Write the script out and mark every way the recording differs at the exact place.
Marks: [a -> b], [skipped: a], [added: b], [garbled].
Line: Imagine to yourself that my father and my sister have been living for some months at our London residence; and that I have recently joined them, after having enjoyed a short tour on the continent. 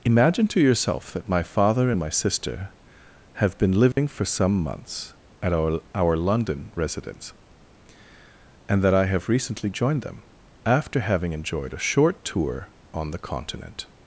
Imagine to yourself that my father and my sister have been living for some months at our [added: our] London residence; and that I have recently joined them, after having enjoyed a short tour on the continent.